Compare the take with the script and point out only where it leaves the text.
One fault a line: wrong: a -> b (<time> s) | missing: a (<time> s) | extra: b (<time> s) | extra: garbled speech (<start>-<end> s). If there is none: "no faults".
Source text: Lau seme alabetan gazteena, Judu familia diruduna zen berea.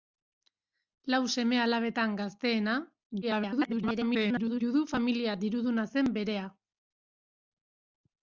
extra: garbled speech (3.2-4.6 s)